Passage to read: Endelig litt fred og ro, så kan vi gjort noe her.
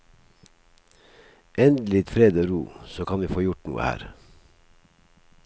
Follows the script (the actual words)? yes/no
no